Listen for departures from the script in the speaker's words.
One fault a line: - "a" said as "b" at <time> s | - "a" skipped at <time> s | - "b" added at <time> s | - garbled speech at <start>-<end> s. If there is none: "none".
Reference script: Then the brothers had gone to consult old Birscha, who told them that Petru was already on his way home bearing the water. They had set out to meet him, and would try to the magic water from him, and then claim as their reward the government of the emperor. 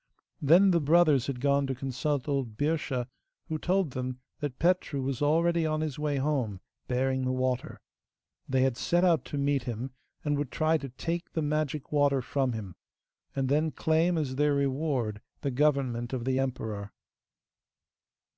- "take" added at 10.9 s